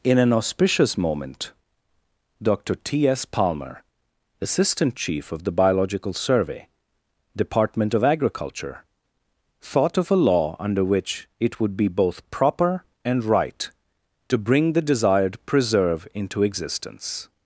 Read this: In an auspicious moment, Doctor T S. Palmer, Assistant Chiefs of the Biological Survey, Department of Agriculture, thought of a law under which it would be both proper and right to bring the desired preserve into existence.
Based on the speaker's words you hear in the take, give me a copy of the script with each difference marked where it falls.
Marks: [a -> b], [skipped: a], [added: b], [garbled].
In an auspicious moment, Doctor T S. Palmer, Assistant [Chiefs -> Chief] of the Biological Survey, Department of Agriculture, thought of a law under which it would be both proper and right to bring the desired preserve into existence.